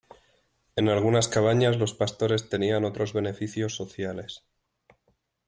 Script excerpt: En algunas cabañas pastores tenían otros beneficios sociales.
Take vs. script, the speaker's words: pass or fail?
fail